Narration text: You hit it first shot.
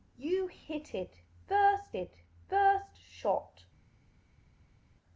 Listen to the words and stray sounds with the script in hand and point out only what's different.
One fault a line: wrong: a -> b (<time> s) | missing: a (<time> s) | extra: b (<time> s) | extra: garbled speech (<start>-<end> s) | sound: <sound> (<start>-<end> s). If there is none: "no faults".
extra: it first (2.0 s)